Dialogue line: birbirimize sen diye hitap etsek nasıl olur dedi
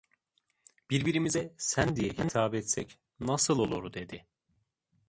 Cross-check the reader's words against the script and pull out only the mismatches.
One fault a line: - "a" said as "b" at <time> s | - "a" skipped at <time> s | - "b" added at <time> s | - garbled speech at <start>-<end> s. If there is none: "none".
none